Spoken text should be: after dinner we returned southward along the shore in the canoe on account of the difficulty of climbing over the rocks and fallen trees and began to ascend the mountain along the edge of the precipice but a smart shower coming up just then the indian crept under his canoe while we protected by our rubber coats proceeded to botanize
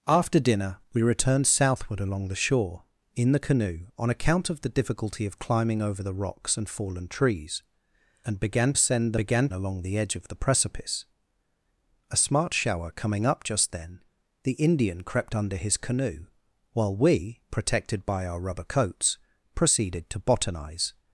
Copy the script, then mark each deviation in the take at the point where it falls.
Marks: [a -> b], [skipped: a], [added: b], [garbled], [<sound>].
after dinner we returned southward along the shore in the canoe on account of the difficulty of climbing over the rocks and fallen trees and began [skipped: to] ascend the [mountain -> began] along the edge of the precipice [skipped: but] a smart shower coming up just then the indian crept under his canoe while we protected by our rubber coats proceeded to botanize